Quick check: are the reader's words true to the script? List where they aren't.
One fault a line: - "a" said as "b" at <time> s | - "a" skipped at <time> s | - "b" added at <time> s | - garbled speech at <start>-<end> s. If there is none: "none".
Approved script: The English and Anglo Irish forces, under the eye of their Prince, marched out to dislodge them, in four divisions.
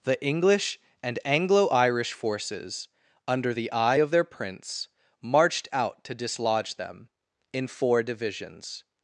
none